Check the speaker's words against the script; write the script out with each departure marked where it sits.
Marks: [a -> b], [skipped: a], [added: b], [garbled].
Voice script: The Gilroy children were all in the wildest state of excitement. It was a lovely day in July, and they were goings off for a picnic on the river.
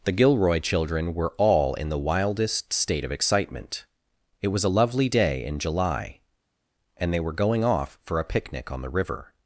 The Gilroy children were all in the wildest state of excitement. It was a lovely day in July, and they were [goings -> going] off for a picnic on the river.